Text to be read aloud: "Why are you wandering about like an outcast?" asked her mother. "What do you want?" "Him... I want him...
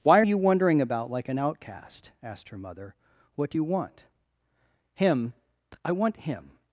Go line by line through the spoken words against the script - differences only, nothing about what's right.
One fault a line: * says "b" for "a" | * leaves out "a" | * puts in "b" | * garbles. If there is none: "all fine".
* leaves out "are"